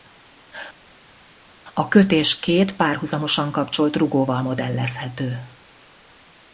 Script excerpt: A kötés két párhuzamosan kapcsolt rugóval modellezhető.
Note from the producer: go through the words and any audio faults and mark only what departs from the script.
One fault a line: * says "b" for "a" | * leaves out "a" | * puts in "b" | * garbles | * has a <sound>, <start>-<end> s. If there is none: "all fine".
all fine